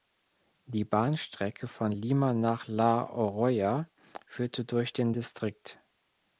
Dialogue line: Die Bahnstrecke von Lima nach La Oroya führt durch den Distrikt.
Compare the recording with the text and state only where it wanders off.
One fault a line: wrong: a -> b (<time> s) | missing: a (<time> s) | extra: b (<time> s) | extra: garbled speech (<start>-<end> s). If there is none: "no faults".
no faults